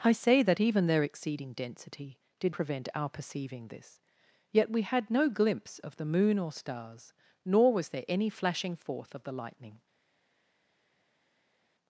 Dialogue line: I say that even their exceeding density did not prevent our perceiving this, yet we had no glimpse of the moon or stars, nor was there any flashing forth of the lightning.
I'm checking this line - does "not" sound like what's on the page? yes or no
no